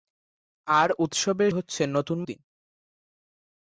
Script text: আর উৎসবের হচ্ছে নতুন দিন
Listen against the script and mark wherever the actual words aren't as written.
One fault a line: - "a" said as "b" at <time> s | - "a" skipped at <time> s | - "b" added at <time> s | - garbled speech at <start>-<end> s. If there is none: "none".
none